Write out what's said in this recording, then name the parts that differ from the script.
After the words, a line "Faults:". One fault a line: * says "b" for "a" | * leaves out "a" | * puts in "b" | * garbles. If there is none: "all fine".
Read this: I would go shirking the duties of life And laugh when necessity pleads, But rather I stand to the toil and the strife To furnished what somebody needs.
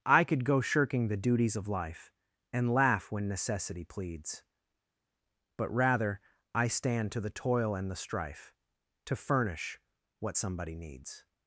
I could go shirking the duties of life And laugh when necessity pleads, But rather I stand to the toil and the strife To furnish what somebody needs.
Faults:
* says "could" for "would"
* says "furnish" for "furnished"